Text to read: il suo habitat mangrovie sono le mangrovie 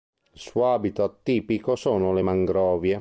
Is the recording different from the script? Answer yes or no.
yes